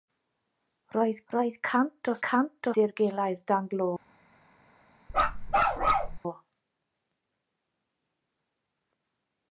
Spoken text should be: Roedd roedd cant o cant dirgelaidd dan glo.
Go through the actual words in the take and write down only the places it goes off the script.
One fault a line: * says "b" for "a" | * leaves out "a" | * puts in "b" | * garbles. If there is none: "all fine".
all fine